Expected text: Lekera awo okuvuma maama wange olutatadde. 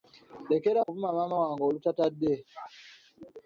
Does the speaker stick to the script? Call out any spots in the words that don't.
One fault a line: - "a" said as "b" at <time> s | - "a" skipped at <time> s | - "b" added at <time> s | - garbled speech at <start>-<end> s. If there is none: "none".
- "awo" skipped at 0.8 s